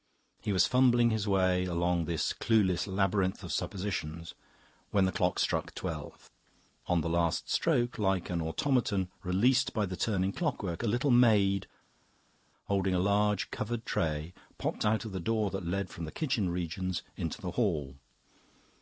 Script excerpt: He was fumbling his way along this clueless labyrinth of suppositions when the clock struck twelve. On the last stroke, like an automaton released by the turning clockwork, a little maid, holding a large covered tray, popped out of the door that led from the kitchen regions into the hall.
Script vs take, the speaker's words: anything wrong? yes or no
no